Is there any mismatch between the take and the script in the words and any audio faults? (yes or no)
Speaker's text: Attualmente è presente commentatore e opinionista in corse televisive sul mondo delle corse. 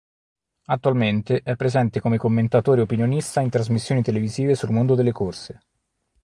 yes